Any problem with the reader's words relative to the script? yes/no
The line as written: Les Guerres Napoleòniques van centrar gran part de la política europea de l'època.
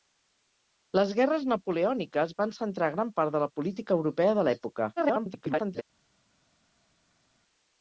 yes